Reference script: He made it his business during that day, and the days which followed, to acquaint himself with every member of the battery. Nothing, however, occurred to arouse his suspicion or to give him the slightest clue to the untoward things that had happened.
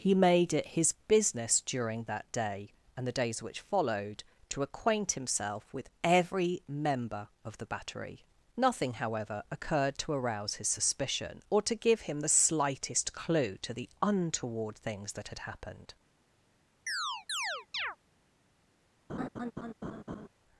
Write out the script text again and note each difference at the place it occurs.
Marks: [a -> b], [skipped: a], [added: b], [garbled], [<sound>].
He made it his business during that day, and the days which followed, to acquaint himself with every member of the battery. Nothing, however, occurred to arouse his suspicion or to give him the slightest clue to the untoward things that had happened. [chirp] [laugh]